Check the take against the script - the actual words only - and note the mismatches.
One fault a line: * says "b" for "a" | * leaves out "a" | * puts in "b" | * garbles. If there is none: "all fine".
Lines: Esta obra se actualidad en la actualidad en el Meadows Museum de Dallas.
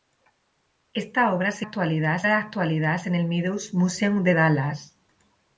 all fine